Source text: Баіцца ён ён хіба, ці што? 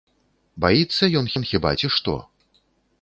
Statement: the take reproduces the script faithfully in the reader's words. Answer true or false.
true